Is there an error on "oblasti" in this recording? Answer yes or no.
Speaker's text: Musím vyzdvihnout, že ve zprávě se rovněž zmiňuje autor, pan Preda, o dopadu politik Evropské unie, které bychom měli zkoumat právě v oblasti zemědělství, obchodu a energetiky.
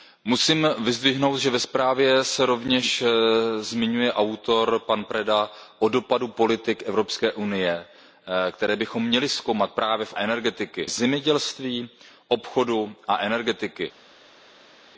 yes